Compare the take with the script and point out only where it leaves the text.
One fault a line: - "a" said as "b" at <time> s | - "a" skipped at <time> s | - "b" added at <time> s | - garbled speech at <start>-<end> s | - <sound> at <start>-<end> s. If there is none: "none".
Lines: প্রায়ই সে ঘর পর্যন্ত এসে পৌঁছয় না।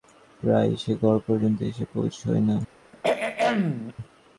- throat clearing at 2.9-3.9 s